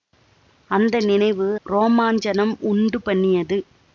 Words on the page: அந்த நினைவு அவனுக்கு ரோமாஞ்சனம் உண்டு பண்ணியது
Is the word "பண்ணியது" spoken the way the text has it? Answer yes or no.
yes